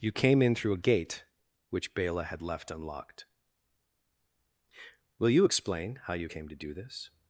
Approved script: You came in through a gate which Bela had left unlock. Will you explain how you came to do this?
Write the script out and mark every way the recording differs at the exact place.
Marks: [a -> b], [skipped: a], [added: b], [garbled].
You came in through a gate which Bela had left [unlock. -> unlocked] Will you explain how you came to do this?